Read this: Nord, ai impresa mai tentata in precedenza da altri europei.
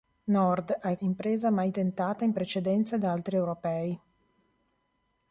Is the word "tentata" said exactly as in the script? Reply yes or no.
yes